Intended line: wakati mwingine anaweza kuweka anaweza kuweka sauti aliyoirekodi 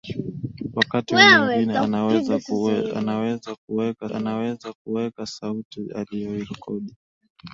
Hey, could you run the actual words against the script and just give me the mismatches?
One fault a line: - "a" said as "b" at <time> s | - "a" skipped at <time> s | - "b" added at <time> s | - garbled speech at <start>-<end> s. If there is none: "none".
none